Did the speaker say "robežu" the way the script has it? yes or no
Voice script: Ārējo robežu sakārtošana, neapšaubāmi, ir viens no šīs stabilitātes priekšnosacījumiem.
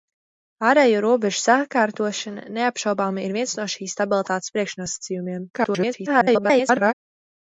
yes